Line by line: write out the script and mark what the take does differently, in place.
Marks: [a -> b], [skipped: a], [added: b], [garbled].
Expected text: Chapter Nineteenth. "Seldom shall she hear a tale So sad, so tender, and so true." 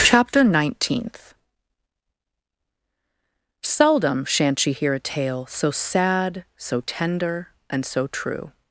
Chapter Nineteenth. "Seldom [shall -> shan't] she hear a tale So sad, so tender, and so true."